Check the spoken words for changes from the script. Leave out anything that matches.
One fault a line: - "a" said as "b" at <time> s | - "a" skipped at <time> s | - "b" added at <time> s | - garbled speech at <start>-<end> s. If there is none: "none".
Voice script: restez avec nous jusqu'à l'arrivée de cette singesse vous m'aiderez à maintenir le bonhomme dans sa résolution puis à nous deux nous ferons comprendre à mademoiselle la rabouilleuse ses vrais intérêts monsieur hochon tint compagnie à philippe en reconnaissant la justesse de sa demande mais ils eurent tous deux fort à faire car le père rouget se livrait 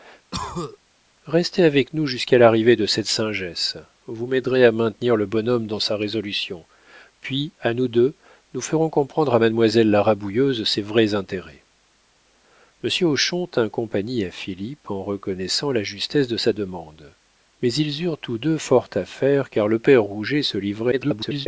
- garbled speech at 20.9-21.5 s